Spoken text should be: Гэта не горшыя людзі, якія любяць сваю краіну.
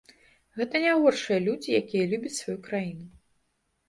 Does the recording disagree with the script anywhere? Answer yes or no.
no